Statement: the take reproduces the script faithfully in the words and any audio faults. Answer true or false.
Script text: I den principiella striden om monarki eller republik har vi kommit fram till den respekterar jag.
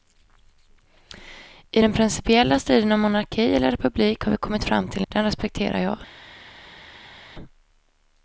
true